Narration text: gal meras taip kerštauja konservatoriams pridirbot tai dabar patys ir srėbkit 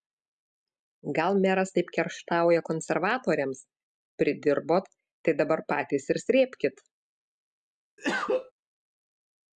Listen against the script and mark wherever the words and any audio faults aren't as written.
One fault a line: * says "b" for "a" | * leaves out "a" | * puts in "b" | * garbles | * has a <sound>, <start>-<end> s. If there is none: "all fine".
* has a cough, 8.0-8.5 s